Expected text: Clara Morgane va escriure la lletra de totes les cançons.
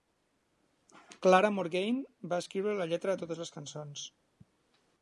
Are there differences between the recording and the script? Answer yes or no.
no